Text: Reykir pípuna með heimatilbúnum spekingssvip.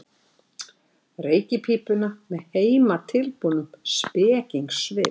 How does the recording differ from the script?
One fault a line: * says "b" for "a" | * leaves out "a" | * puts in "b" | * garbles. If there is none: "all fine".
all fine